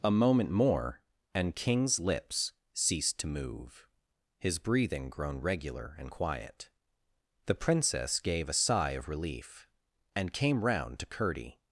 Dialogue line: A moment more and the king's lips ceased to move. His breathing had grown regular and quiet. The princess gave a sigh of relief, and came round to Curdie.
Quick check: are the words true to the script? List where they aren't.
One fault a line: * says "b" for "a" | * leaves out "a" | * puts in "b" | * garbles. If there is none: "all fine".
* leaves out "the"
* leaves out "had"